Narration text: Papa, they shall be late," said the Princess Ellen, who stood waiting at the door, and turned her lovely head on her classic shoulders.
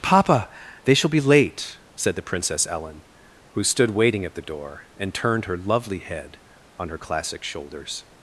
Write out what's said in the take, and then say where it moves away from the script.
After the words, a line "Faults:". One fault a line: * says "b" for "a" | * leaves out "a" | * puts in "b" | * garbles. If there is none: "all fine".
Papa, they shall be late," said the Princess Ellen, who stood waiting at the door, and turned her lovely head on her classic shoulders.
Faults:
all fine